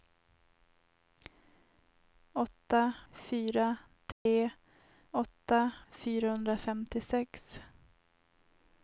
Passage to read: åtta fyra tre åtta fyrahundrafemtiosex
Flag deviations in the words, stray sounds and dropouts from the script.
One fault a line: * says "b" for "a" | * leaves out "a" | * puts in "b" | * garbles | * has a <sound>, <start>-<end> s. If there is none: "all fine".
* has a dropout, 4.1-4.3 s